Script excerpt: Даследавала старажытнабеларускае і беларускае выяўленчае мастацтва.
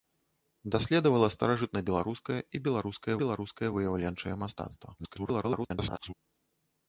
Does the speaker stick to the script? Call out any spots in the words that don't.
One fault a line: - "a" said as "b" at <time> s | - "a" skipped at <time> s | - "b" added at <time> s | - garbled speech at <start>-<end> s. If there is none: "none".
- "беларускае" added at 3.2 s
- garbled speech at 5.0-6.1 s